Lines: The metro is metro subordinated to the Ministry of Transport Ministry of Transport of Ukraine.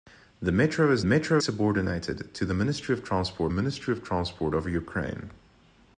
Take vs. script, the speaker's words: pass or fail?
pass